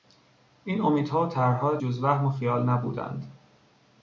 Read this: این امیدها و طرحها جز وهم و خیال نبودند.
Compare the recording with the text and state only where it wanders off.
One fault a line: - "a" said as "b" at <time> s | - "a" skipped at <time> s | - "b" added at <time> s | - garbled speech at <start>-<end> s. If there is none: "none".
none